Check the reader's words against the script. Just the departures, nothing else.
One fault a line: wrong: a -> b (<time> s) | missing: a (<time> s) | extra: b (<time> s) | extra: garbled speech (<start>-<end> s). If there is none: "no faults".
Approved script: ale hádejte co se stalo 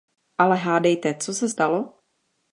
no faults